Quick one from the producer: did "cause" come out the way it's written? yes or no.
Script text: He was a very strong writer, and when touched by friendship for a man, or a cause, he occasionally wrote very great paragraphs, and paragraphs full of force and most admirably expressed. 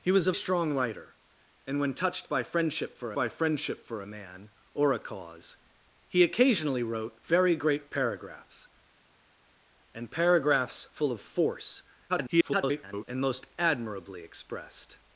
yes